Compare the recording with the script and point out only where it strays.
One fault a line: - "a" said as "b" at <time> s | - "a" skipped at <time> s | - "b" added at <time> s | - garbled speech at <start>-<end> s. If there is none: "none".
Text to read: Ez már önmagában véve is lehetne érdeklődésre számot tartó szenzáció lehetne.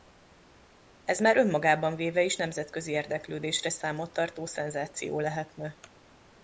- "lehetne" said as "nemzetközi" at 2.4 s